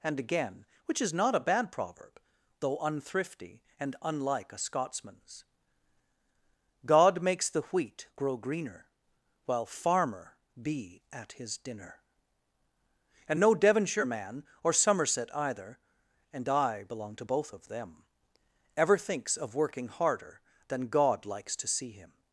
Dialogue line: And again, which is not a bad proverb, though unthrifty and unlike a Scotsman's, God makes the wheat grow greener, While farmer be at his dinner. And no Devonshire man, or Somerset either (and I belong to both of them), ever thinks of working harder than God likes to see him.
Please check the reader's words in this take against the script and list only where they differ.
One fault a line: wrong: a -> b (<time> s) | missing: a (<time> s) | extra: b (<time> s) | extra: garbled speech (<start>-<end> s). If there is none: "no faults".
no faults